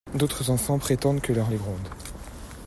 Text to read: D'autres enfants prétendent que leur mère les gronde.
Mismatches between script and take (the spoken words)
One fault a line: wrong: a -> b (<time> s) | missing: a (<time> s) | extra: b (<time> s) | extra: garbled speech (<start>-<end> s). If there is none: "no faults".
missing: mère (1.5 s)